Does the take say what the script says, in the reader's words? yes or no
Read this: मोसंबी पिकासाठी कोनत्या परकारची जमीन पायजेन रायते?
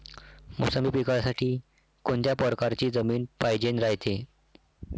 yes